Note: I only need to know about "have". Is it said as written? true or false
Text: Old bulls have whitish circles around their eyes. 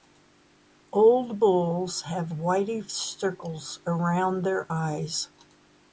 true